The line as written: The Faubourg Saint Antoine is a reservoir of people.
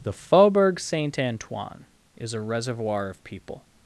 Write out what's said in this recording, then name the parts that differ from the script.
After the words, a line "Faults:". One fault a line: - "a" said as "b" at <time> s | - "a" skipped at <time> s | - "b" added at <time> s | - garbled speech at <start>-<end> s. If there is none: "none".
The Faubourg Saint Antoine is a reservoir of people.
Faults:
none